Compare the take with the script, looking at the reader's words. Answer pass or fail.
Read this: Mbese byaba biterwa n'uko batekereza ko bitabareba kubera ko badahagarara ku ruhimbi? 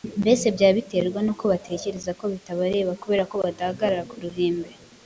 pass